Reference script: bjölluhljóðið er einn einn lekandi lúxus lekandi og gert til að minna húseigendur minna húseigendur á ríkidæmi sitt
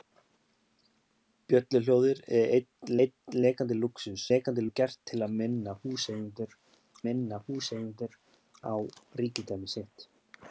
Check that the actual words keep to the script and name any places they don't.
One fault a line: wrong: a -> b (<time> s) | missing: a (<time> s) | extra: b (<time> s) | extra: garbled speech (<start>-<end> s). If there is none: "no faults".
no faults